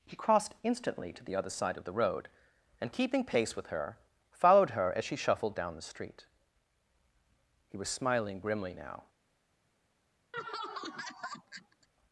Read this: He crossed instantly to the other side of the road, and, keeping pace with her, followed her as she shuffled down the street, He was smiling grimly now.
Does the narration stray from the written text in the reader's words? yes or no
no